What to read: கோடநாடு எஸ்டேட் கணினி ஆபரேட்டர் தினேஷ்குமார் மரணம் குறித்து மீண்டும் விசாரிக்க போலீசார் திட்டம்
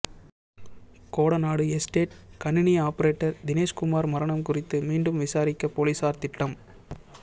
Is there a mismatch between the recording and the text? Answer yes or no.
no